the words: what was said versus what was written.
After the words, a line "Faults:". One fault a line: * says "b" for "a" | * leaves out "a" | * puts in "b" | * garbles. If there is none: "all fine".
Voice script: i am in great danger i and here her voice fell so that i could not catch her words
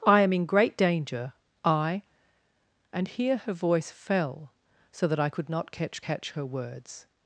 i am in great danger i and here her voice fell so that i could not catch catch her words
Faults:
* puts in "catch"